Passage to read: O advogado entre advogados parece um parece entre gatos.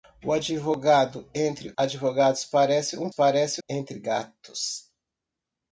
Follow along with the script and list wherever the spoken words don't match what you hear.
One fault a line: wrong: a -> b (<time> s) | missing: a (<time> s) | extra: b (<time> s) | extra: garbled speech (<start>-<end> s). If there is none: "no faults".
no faults